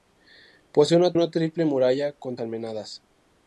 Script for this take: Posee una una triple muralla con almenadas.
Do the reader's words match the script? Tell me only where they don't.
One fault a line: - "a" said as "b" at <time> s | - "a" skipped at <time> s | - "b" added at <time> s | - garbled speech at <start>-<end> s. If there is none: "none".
none